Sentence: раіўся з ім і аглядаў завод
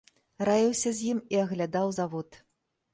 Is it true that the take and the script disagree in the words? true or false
false